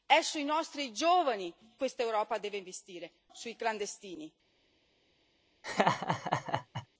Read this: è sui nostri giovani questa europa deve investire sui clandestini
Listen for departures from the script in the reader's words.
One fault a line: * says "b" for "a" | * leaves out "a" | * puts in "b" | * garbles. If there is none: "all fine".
all fine